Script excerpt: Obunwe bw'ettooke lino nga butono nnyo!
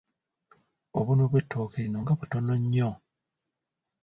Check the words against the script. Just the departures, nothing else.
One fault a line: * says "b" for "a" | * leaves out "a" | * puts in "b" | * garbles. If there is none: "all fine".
all fine